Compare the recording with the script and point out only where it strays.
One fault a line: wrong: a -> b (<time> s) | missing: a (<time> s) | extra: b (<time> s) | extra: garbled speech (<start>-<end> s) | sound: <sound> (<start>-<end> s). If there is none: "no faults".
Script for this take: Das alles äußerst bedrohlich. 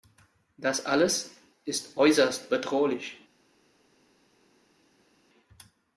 extra: ist (1.6 s)